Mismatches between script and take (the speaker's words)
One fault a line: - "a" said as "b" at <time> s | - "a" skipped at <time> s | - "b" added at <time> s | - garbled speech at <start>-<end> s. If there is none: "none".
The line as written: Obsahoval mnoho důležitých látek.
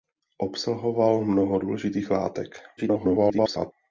- garbled speech at 2.8-3.7 s